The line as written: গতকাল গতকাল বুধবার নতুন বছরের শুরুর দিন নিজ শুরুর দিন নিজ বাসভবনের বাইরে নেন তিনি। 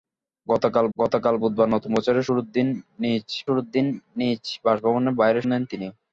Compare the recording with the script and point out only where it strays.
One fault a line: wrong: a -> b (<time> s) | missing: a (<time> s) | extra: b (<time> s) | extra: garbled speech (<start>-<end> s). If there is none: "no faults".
no faults